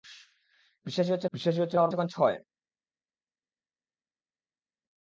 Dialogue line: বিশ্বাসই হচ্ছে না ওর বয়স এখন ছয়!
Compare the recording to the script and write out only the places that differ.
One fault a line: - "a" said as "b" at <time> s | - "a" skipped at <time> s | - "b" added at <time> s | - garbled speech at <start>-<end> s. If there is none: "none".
- "বিশ্বাসই হচ্ছে" added at 1.3 s
- "বয়স" skipped at 1.9 s